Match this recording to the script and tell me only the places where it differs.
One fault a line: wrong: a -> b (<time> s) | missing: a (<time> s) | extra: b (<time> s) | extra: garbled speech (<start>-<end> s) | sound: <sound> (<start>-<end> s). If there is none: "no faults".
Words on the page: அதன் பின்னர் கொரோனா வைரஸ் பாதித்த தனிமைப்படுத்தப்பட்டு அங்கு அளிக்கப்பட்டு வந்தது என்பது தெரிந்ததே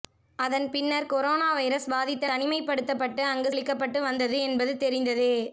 no faults